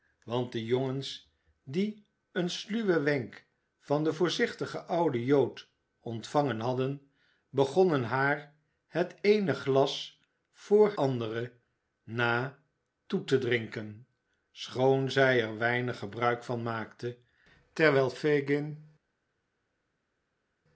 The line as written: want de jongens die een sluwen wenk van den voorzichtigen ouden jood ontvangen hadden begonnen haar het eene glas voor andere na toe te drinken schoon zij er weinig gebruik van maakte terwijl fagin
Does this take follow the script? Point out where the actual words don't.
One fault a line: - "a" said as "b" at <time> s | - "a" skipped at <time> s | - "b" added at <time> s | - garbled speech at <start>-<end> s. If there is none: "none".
none